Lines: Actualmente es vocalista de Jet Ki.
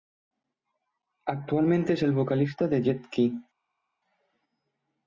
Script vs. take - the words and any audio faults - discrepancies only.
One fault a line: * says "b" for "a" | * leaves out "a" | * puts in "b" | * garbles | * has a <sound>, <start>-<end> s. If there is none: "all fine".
* puts in "el"